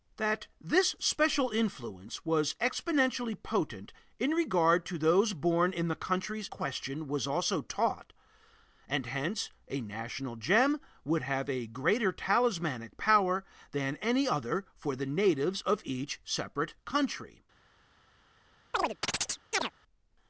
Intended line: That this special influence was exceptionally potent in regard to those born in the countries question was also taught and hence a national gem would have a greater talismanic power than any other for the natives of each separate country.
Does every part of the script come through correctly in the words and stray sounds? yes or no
no